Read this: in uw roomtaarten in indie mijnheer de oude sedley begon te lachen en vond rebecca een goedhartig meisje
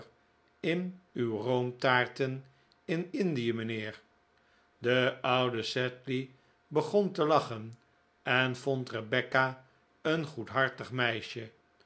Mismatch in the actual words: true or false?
false